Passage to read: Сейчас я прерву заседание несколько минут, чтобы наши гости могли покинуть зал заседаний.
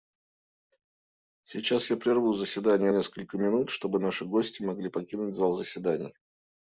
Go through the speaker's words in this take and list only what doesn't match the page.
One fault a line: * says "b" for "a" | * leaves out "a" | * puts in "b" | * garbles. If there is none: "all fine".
all fine